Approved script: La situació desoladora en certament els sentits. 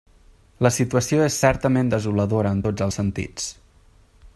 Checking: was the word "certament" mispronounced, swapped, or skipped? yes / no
yes